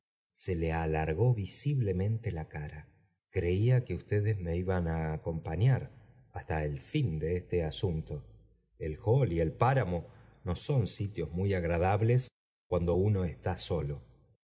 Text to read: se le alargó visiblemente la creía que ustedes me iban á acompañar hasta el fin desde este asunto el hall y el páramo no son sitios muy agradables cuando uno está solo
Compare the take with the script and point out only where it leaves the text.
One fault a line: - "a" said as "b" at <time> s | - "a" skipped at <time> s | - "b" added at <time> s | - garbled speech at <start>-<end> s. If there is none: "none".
- "cara" added at 2.5 s
- "desde" said as "de" at 7.2 s